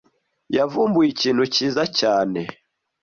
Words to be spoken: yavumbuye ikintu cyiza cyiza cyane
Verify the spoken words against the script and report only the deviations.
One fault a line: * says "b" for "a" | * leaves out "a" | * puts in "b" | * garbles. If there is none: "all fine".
* leaves out "cyiza"